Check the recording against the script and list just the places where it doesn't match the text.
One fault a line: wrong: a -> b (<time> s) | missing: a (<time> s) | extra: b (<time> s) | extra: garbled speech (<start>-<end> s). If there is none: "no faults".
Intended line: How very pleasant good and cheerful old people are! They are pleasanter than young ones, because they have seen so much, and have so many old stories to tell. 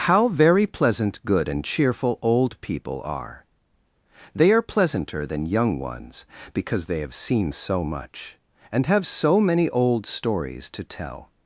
no faults